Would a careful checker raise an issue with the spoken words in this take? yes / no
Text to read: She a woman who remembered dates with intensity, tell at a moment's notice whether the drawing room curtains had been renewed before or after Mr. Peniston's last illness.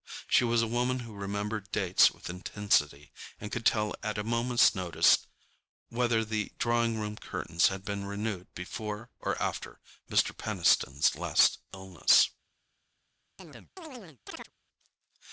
yes